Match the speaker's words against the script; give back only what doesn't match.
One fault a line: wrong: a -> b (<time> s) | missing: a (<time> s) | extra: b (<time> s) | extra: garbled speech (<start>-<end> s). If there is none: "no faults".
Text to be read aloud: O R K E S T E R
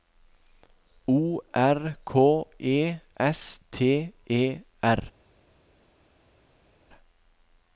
no faults